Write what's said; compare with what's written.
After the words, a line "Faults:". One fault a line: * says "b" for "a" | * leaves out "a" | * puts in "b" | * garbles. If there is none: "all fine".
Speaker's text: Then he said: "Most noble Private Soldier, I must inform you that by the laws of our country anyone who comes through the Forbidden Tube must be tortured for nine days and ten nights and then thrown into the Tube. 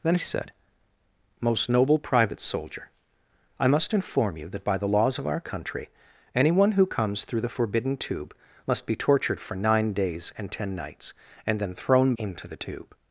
Then he said: "Most noble Private Soldier, I must inform you that by the laws of our country anyone who comes through the Forbidden Tube must be tortured for nine days and ten nights and then thrown into the Tube.
Faults:
all fine